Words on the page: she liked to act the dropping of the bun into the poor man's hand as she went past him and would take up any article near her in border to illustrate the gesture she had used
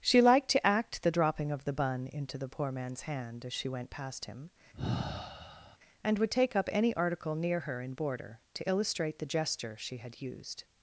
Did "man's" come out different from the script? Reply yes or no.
no